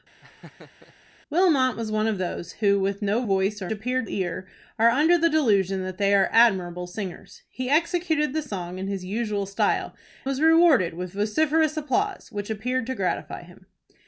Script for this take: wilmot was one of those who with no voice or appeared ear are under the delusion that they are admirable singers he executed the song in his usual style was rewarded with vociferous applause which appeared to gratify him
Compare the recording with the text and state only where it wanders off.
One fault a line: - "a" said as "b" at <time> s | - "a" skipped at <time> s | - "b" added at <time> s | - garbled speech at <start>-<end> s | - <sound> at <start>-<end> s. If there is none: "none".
- laugh at 0.2-0.9 s